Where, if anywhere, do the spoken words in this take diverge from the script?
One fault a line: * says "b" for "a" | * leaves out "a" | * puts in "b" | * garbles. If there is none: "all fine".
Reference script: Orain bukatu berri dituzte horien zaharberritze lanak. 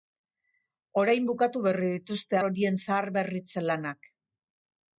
all fine